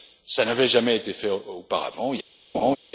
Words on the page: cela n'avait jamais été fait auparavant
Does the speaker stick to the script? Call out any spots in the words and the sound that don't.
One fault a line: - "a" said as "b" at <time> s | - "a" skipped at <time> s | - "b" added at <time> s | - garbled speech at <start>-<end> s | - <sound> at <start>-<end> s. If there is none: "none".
- laugh at 2.5-2.8 s